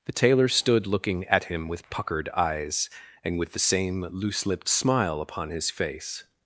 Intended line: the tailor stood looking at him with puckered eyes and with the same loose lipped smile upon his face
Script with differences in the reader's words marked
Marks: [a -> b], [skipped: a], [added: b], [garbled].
the tailor stood looking at him with puckered eyes and with the same loose lipped smile upon his face